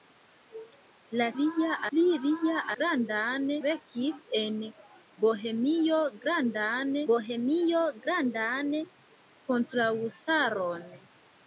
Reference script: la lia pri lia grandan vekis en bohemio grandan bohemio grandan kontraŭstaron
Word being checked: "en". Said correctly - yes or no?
yes